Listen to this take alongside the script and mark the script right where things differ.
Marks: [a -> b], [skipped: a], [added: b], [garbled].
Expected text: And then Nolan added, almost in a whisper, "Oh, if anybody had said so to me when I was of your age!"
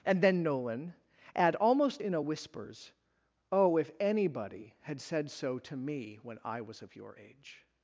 And then Nolan [added, -> add] almost in a [whisper, -> whispers] "Oh, if anybody had said so to me when I was of your age!"